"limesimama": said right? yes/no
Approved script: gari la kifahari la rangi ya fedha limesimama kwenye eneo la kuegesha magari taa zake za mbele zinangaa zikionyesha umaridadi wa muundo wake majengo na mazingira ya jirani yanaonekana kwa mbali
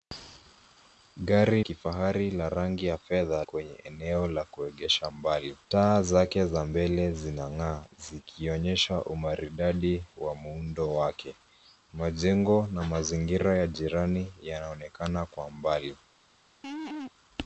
no